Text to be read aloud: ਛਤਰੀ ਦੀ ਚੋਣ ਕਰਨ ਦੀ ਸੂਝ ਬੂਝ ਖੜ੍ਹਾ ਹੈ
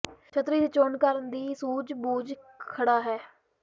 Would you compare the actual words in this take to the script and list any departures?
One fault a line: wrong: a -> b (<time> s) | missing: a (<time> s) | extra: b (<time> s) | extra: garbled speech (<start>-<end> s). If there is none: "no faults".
no faults